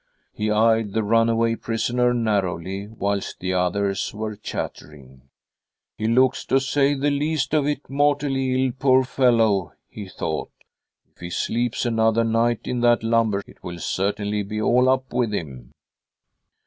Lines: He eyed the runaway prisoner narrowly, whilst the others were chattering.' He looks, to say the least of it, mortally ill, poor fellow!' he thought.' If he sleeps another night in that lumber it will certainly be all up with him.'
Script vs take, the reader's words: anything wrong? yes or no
no